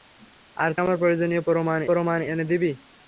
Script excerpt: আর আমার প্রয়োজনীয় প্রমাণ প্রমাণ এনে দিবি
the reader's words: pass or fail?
pass